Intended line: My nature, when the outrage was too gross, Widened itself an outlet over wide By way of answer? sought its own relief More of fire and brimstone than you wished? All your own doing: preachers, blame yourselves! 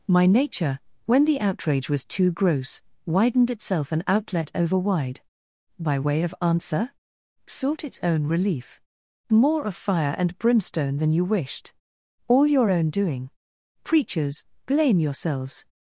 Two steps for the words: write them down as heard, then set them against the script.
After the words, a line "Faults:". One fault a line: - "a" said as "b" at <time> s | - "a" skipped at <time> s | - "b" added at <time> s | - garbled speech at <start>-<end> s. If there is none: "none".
My nature, when the outrage was too gross, Widened itself an outlet over wide By way of answer? sought its own relief More of fire and brimstone than you wished? All your own doing: preachers, blame yourselves!
Faults:
none